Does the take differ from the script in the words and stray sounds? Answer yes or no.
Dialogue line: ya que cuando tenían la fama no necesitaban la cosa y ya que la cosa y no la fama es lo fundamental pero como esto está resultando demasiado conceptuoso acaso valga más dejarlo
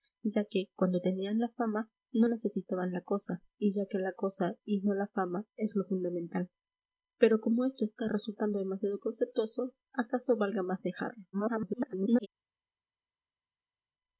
yes